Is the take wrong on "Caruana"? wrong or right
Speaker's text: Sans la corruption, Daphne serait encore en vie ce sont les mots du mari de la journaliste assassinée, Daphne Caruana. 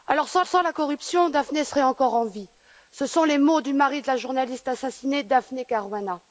right